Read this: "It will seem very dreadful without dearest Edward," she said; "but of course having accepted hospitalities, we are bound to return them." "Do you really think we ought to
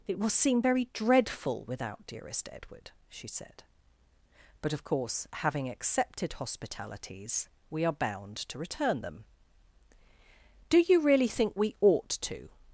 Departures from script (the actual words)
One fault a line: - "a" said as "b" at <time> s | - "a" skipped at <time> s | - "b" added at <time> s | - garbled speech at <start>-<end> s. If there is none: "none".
none